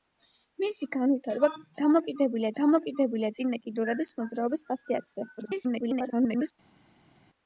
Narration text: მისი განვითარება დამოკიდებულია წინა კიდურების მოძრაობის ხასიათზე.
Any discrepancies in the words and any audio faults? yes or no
yes